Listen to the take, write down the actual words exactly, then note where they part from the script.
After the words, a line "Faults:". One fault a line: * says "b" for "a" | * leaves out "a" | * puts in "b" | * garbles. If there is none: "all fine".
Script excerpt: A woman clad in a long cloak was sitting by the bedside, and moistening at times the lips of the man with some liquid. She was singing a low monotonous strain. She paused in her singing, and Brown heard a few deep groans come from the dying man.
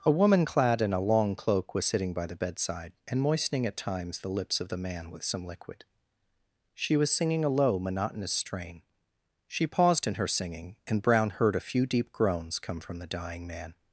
A woman clad in a long cloak was sitting by the bedside, and moistening at times the lips of the man with some liquid. She was singing a low monotonous strain. She paused in her singing, and Brown heard a few deep groans come from the dying man.
Faults:
all fine